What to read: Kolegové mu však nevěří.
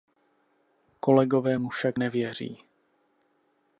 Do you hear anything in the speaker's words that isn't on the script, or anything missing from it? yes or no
no